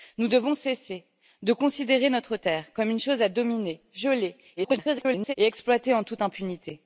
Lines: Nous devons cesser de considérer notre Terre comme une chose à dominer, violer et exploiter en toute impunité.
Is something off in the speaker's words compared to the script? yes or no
yes